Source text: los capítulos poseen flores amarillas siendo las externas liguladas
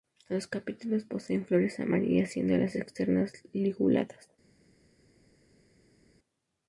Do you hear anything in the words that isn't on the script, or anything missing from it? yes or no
no